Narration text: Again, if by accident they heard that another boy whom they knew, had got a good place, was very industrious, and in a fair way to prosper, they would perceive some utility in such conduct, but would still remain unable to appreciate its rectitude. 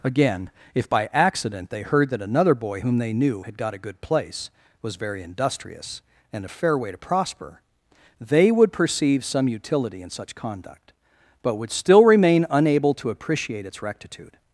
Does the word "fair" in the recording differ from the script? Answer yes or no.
no